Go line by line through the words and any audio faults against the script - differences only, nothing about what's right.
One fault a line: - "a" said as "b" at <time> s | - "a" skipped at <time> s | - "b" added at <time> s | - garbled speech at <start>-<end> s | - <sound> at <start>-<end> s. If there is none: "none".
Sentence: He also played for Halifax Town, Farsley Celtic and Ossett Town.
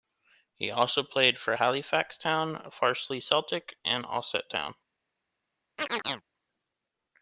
- chirp at 5.8-6.2 s